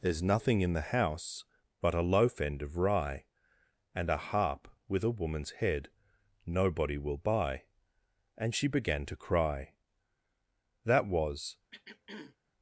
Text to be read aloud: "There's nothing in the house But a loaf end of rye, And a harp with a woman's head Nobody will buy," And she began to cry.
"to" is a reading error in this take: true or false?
false